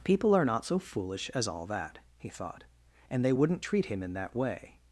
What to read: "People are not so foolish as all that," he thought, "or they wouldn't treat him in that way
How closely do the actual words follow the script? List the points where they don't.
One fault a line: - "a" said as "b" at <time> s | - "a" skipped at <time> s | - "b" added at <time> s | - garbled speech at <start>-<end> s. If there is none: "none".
- "or" said as "and" at 3.1 s